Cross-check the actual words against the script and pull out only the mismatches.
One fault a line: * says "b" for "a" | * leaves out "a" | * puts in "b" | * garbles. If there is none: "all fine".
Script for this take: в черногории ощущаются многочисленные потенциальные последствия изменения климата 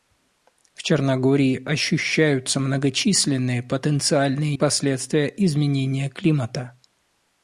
all fine